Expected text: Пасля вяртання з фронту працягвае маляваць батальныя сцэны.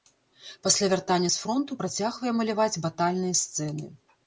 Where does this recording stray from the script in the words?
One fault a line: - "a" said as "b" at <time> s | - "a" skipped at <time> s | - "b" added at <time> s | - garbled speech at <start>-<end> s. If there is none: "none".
none